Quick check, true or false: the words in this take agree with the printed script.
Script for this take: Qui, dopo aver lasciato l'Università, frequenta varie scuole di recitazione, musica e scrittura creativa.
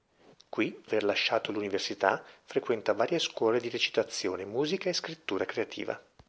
false